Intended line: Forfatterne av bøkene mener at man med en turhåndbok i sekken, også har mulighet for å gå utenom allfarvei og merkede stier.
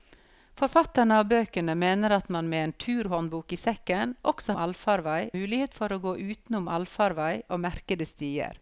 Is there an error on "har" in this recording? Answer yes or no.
yes